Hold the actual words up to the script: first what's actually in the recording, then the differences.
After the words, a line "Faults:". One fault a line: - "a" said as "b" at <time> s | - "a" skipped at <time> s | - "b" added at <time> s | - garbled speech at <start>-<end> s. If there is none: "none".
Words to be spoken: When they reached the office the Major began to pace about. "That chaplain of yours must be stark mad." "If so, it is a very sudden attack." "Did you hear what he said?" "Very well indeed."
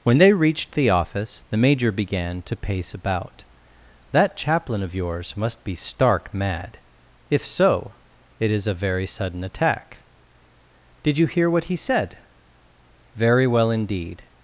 When they reached the office the Major began to pace about. "That chaplain of yours must be stark mad." "If so, it is a very sudden attack." "Did you hear what he said?" "Very well indeed."
Faults:
none